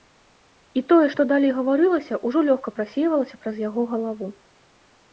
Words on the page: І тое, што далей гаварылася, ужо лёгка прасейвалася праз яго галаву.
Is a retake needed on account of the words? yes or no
no